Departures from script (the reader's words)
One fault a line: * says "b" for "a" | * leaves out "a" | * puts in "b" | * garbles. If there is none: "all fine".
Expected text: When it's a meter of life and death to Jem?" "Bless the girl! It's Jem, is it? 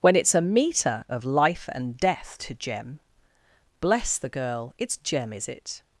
all fine